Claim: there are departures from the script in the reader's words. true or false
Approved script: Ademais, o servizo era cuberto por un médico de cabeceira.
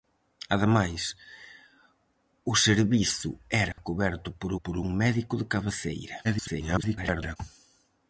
true